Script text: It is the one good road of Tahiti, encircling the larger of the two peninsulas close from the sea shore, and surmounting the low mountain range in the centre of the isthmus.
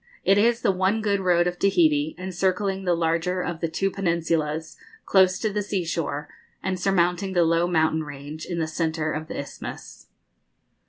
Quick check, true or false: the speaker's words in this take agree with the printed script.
false